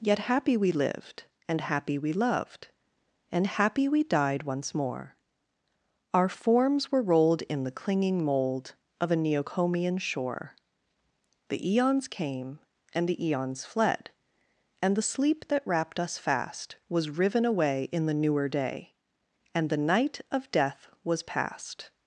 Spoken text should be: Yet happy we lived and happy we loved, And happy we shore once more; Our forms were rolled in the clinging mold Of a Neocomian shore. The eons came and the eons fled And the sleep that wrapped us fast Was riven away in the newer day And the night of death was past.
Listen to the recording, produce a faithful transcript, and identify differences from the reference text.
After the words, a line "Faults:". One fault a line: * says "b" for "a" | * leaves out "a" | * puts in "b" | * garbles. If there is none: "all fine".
Yet happy we lived and happy we loved, And happy we died once more; Our forms were rolled in the clinging mold Of a Neocomian shore. The eons came and the eons fled And the sleep that wrapped us fast Was riven away in the newer day And the night of death was past.
Faults:
* says "died" for "shore"